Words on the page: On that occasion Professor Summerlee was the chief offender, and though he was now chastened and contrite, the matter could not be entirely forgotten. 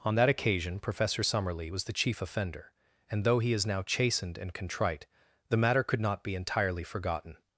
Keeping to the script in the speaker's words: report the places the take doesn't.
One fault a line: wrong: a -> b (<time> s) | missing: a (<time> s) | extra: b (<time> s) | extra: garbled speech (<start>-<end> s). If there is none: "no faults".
wrong: was -> is (3.5 s)